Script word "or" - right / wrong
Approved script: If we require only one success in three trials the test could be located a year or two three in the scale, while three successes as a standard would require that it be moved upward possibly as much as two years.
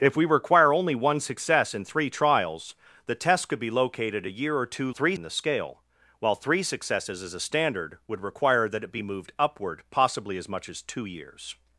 right